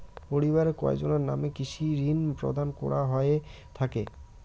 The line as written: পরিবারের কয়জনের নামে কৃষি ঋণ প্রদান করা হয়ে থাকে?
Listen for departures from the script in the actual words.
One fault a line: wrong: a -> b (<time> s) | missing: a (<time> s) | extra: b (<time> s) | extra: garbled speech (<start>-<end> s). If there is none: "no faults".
no faults